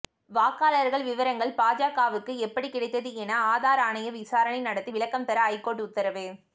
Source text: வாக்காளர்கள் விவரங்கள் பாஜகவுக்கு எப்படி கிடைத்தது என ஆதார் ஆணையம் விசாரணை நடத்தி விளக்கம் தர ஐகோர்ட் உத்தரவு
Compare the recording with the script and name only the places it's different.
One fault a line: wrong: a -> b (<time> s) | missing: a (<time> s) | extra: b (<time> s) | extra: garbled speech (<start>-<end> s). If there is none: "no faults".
no faults